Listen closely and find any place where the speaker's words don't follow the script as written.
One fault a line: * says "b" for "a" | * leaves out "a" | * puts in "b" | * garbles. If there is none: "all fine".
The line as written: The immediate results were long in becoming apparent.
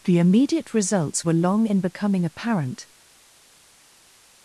all fine